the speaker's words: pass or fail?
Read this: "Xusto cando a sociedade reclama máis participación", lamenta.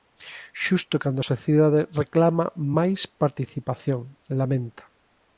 pass